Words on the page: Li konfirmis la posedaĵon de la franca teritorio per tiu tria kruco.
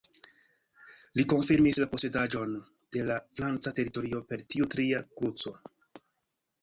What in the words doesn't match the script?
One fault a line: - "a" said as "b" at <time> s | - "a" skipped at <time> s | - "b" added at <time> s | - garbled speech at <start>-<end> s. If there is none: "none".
none